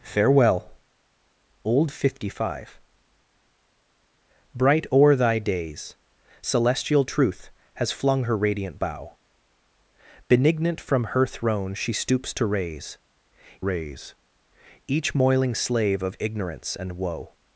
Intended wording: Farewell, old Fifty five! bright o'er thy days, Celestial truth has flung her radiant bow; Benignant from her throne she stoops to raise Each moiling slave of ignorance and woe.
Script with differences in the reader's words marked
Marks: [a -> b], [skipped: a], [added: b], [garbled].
Farewell, old Fifty five! bright o'er thy days, Celestial truth has flung her radiant bow; Benignant from her throne she stoops to raise [added: raise] Each moiling slave of ignorance and woe.